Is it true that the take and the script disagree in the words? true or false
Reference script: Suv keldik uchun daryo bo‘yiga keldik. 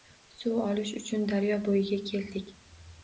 true